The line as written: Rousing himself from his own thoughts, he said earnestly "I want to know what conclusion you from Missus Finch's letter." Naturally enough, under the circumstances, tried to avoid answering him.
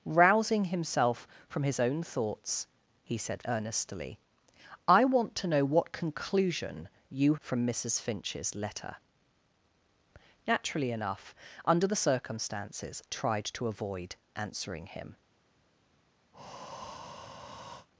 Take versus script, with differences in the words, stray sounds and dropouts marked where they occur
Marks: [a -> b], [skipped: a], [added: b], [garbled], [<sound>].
Rousing himself from his own thoughts, he said earnestly "I want to know what conclusion you from Missus Finch's letter." Naturally enough, under the circumstances, tried to avoid answering him. [breath]